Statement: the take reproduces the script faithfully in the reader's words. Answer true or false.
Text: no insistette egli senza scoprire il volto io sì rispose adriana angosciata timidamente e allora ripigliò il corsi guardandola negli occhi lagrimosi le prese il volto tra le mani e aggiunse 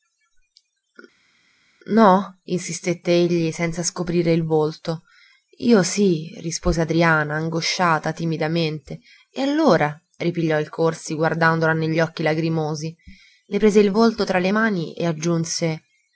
true